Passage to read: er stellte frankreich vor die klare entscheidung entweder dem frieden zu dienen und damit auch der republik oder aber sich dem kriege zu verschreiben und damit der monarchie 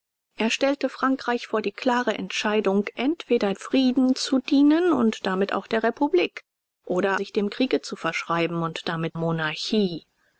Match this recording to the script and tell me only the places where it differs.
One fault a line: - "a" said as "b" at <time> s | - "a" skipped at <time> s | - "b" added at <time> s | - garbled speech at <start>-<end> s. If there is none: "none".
- "dem" skipped at 3.5 s
- "aber" skipped at 7.2 s
- "der" skipped at 9.2 s